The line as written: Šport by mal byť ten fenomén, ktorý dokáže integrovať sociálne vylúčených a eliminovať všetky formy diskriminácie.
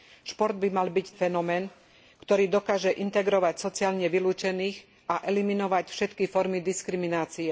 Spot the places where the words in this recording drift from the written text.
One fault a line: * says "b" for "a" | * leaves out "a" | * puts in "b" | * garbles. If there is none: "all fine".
* leaves out "ten"